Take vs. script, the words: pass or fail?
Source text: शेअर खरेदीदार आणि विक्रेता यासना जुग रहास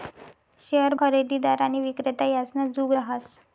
pass